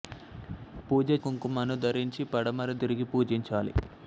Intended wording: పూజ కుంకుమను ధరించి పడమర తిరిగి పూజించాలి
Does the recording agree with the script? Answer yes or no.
yes